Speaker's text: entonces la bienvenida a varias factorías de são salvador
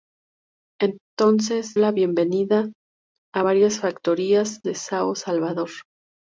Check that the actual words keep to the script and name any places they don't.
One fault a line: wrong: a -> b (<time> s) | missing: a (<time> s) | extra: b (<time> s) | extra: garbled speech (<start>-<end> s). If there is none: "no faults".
no faults